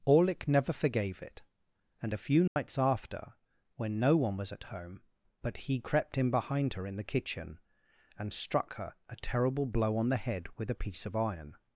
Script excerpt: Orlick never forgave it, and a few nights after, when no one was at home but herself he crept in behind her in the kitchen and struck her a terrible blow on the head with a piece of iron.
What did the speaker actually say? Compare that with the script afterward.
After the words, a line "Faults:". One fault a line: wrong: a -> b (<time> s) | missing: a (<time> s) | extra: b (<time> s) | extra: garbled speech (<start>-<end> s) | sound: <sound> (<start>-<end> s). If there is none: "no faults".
Orlick never forgave it, and a few nights after, when no one was at home but he crept in behind her in the kitchen and struck her a terrible blow on the head with a piece of iron.
Faults:
sound: dropout (2.5-2.6 s)
missing: herself (5.6 s)